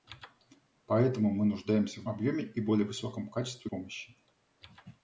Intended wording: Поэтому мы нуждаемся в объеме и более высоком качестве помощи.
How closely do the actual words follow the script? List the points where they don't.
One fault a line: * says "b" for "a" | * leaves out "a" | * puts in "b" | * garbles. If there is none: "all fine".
all fine